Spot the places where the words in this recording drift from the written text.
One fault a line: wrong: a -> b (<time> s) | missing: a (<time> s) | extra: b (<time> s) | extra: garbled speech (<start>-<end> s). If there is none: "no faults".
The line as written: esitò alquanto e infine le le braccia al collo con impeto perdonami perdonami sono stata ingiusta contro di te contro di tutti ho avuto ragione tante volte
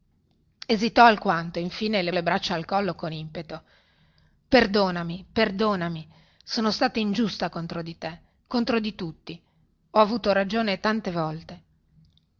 no faults